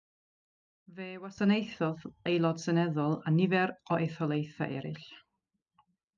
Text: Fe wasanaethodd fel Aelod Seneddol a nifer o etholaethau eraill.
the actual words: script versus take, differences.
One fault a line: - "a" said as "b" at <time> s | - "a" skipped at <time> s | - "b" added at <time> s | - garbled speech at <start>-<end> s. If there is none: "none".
- "fel" skipped at 2.0 s